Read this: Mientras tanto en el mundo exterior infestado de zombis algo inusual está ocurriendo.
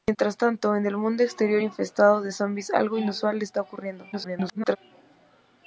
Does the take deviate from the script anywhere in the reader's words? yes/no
yes